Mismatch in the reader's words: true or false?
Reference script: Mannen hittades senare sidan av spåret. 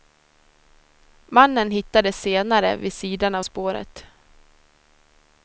true